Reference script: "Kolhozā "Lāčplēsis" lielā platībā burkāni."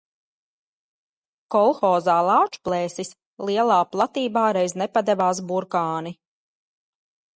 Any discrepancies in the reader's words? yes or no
yes